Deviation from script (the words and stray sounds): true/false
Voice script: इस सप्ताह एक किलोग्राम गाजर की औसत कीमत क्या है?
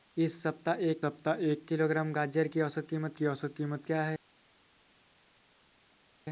true